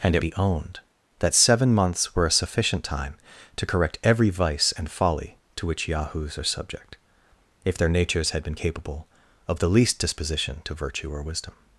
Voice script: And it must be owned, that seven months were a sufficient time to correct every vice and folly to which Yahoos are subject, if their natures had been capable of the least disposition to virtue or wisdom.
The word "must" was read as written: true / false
false